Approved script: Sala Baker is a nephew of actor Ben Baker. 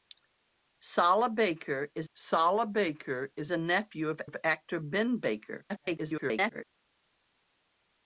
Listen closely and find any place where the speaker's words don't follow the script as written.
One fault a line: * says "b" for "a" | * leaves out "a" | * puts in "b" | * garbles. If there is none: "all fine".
* puts in "sala Baker is"
* puts in "of"
* garbles